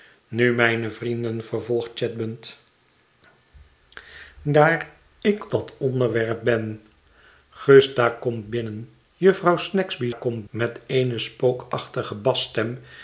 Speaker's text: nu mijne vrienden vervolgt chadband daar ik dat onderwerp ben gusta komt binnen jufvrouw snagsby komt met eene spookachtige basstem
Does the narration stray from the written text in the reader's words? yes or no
no